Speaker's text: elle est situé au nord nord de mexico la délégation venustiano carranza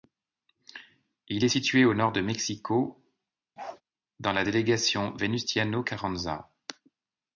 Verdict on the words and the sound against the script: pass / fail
fail